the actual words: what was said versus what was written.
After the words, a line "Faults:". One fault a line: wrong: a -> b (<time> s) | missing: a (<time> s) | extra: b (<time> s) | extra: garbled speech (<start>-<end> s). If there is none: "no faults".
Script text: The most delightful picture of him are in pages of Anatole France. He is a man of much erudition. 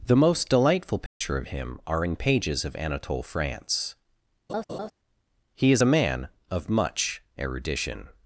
The most delightful picture of him are in pages of Anatole France. He is a man of much erudition.
Faults:
no faults